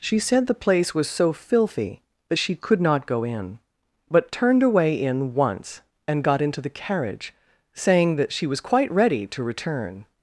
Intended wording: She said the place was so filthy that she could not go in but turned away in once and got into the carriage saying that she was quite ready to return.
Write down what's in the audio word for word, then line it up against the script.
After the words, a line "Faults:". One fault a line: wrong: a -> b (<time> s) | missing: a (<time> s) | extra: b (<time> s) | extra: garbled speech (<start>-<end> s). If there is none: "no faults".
She said the place was so filthy that she could not go in but turned away in once and got into the carriage saying that she was quite ready to return.
Faults:
no faults